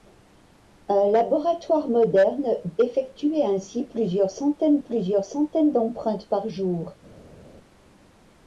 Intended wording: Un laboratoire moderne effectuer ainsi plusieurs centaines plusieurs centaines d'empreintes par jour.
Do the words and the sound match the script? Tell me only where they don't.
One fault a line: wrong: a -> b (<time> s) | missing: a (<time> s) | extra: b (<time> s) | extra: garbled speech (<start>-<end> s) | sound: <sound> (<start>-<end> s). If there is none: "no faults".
no faults